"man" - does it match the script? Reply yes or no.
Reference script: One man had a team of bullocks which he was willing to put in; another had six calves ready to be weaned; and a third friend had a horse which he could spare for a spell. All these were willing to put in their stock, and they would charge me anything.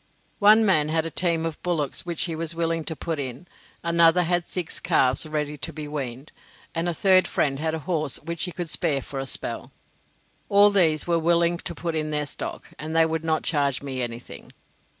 yes